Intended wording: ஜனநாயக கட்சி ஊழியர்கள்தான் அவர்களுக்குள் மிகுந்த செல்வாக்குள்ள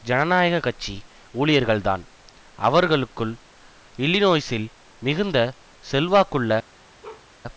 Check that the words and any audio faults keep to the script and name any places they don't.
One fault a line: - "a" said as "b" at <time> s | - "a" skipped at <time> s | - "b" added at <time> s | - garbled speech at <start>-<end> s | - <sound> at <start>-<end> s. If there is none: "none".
- "இல்லினோய்சில்" added at 4.0 s
- bark at 7.0-7.3 s